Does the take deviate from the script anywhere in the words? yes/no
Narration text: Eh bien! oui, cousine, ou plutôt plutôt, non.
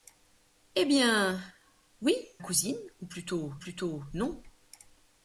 no